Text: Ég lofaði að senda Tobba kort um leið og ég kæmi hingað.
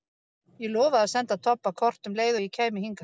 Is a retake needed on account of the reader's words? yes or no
no